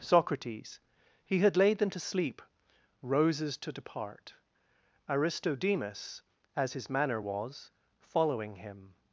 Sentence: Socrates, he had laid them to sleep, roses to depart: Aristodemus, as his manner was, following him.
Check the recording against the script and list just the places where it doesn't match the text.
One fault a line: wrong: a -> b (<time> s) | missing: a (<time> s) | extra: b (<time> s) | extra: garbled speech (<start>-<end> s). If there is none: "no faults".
no faults